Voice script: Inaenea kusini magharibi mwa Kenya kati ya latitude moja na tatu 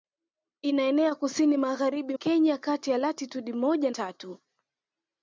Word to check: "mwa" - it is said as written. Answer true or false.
false